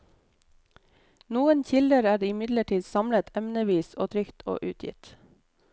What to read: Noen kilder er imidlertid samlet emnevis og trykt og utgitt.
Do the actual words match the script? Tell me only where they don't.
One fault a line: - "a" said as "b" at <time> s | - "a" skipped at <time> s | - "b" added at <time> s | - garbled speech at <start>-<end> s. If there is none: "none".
none